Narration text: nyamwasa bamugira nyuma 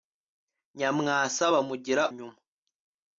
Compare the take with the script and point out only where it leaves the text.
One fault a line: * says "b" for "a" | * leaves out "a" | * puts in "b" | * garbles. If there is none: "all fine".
all fine